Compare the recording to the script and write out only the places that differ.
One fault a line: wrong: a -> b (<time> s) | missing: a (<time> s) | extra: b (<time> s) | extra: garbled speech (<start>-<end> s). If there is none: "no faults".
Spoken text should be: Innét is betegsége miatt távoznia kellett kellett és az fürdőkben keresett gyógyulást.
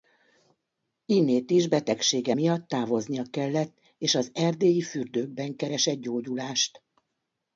missing: kellett (3.8 s)
extra: erdélyi (4.3 s)